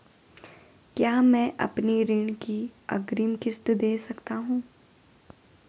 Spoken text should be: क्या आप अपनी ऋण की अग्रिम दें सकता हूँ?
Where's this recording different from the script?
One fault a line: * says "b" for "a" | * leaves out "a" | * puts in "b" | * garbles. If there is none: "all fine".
* says "मैं" for "आप"
* puts in "किश्त"